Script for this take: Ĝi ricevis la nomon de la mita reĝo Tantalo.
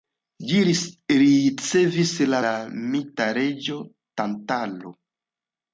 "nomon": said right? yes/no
no